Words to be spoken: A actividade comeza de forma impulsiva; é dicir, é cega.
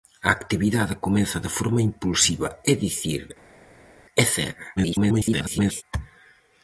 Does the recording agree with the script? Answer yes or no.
no